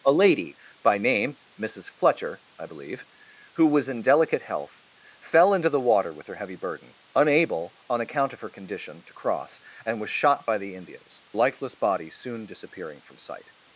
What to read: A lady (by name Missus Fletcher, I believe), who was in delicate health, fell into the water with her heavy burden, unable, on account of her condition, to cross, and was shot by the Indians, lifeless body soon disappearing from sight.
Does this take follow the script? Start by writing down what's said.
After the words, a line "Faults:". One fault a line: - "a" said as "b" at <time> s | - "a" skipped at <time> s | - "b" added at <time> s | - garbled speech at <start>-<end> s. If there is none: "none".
A lady (by name Missus Fletcher, I believe), who was in delicate health, fell into the water with her heavy burden, unable, on account of her condition, to cross, and was shot by the Indians, lifeless body soon disappearing from sight.
Faults:
none